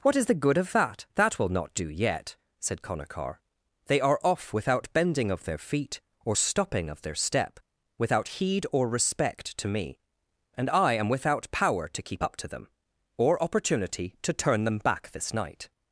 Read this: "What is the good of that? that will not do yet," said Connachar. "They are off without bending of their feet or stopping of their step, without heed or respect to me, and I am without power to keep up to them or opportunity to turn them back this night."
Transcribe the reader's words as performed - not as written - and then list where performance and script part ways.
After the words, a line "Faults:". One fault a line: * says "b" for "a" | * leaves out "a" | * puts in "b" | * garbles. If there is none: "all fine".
"What is the good of that? that will not do yet," said Connachar. "They are off without bending of their feet or stopping of their step, without heed or respect to me, and I am without power to keep up to them or opportunity to turn them back this night."
Faults:
all fine